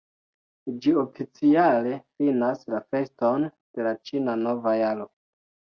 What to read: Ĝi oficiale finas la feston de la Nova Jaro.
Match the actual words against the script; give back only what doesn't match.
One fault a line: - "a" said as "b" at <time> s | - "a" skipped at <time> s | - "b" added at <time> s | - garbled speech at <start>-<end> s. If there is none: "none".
- "Ĉina" added at 4.1 s